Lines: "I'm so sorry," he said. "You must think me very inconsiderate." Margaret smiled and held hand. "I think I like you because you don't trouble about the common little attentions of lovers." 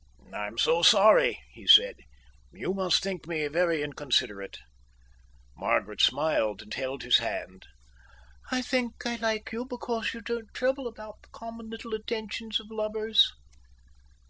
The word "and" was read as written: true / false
true